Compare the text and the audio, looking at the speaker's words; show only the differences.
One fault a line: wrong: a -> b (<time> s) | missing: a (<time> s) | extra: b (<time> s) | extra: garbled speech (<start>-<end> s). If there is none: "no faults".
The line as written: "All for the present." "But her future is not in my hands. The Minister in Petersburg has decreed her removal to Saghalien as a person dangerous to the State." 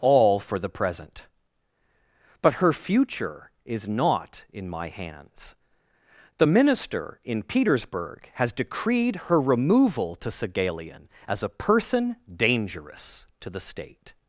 no faults